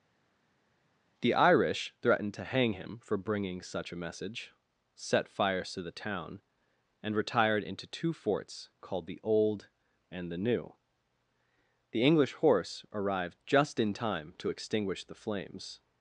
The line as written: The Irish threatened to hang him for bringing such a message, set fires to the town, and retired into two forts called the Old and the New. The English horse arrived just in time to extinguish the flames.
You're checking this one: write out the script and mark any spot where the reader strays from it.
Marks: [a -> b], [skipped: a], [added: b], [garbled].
The Irish threatened to hang him for bringing such a message, set fires to the town, and retired into two forts called the Old and the New. The English horse arrived just in time to extinguish the flames.